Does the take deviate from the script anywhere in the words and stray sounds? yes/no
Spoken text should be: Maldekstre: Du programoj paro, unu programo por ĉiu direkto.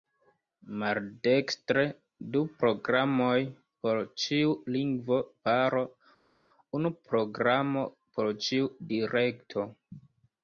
yes